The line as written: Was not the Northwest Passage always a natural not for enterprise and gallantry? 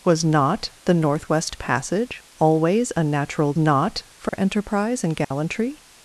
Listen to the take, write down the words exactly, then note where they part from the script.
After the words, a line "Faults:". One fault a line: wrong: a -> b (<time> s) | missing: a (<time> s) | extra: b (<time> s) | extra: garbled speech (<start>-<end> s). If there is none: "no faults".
Was not the Northwest Passage always a natural not for enterprise and gallantry?
Faults:
no faults